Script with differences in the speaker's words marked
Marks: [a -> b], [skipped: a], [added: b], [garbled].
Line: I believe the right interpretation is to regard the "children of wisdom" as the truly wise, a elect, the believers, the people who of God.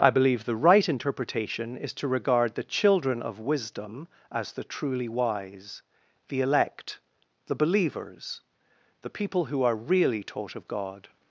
I believe the right interpretation is to regard the "children of wisdom" as the truly wise, [a -> the] elect, the believers, the people who [added: are really taught] of God.